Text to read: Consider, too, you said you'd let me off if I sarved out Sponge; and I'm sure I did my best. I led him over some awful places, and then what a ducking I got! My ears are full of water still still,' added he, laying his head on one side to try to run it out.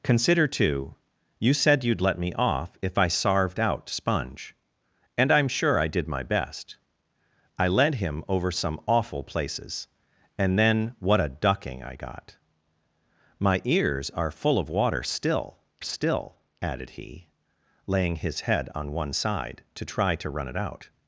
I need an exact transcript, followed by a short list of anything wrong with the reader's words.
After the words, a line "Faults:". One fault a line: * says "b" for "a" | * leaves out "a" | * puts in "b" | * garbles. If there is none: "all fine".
Consider, too, you said you'd let me off if I sarved out Sponge; and I'm sure I did my best. I led him over some awful places, and then what a ducking I got! My ears are full of water still still,' added he, laying his head on one side to try to run it out.
Faults:
all fine